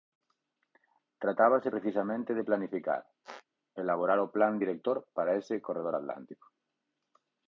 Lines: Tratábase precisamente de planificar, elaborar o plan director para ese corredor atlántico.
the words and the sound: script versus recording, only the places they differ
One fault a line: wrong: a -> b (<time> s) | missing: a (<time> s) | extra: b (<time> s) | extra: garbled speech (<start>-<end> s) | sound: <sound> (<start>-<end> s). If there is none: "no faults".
sound: squeak (3.2-3.4 s)